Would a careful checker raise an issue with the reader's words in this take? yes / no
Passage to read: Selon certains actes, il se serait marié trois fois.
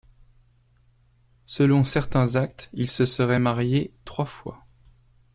no